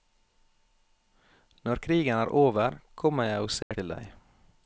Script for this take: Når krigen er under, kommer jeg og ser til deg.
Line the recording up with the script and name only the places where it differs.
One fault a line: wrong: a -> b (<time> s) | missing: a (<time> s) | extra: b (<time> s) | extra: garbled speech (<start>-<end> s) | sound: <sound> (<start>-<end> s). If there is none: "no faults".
wrong: under -> over (2.3 s)
sound: dropout (3.6-3.7 s)